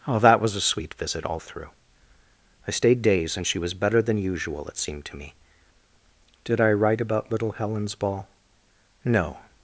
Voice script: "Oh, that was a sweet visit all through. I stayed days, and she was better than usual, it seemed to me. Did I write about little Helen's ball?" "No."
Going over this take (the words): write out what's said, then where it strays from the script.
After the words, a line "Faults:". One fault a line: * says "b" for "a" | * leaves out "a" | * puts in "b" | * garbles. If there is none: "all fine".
"Oh, that was a sweet visit all through. I stayed days, and she was better than usual, it seemed to me. Did I write about little Helen's ball?" "No."
Faults:
all fine